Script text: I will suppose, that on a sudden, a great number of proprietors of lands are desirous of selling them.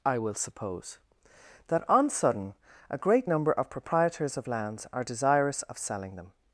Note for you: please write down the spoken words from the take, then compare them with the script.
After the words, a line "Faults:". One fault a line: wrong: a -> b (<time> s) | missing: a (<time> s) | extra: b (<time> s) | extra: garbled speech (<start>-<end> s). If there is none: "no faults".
I will suppose, that on sudden, a great number of proprietors of lands are desirous of selling them.
Faults:
missing: a (2.1 s)